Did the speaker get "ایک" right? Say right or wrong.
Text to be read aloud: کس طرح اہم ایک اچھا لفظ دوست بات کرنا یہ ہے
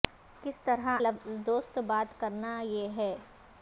wrong